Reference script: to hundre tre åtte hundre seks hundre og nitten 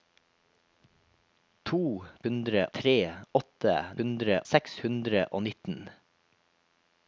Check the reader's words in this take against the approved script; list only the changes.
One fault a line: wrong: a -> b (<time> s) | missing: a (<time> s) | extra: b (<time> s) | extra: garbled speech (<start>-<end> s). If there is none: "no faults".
no faults